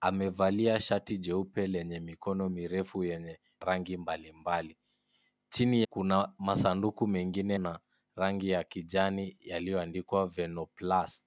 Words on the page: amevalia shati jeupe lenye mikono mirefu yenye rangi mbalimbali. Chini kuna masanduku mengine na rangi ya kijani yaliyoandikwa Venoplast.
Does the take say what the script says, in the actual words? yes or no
yes